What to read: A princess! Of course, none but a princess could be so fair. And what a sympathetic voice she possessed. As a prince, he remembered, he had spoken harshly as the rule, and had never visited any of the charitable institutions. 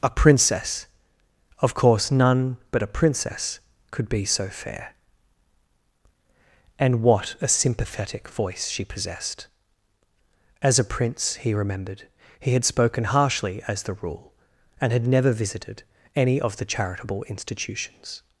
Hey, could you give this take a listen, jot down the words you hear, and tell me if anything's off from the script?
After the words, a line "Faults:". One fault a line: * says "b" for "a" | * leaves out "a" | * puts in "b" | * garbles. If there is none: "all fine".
A princess! Of course, none but a princess could be so fair. And what a sympathetic voice she possessed. As a prince, he remembered, he had spoken harshly as the rule, and had never visited any of the charitable institutions.
Faults:
all fine